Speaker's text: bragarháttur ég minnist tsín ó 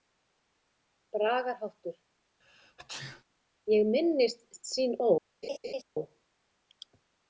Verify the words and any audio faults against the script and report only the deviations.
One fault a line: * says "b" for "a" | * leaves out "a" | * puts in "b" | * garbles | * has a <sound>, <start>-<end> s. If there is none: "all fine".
* has a sneeze, 2.4-3.2 s
* has a laugh, 5.4-5.8 s